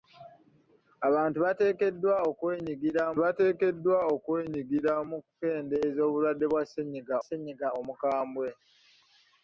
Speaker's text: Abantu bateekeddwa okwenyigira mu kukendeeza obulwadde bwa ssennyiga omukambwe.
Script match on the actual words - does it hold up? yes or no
no